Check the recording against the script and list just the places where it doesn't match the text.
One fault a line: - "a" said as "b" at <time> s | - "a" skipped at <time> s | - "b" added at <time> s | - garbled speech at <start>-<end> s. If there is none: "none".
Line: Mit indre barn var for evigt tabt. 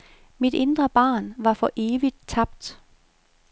none